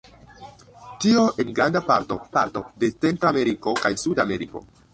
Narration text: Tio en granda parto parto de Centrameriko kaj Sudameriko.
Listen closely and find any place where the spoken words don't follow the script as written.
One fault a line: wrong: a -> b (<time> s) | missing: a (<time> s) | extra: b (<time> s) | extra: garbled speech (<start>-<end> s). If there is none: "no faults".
no faults